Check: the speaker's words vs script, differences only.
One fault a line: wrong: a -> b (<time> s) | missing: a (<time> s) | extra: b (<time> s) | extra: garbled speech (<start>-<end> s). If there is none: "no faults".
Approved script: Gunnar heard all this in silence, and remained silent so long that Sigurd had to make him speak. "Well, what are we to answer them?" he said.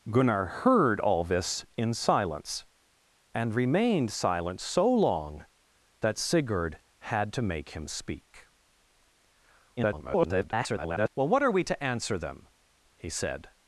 extra: garbled speech (9.8-11.1 s)